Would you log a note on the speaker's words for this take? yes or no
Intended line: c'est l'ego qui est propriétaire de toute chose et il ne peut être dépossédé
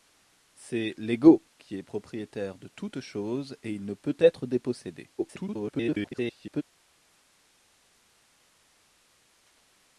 yes